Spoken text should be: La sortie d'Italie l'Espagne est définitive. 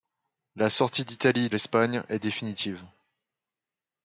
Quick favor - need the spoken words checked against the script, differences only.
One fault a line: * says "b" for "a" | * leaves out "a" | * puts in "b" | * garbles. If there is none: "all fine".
all fine